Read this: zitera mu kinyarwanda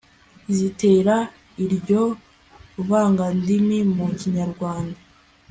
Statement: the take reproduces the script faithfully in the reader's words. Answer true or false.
false